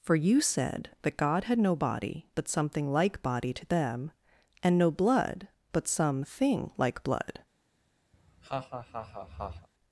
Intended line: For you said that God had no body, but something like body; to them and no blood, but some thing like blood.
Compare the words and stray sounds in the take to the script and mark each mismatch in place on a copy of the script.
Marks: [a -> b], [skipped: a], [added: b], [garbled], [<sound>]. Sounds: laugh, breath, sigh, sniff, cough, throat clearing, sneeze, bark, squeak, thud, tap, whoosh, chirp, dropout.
For you said that God had no body, but something like body; to them and no blood, but some thing like blood. [laugh]